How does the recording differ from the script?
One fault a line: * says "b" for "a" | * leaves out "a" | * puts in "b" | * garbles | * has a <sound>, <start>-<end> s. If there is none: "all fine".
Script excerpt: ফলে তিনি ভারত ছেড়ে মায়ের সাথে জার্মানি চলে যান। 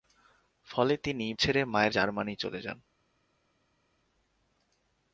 * leaves out "ভারত"
* leaves out "সাথে"